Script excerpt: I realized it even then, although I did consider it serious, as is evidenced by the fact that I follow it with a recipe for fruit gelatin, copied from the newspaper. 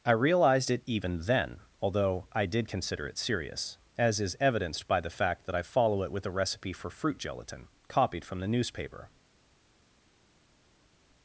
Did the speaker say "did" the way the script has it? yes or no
yes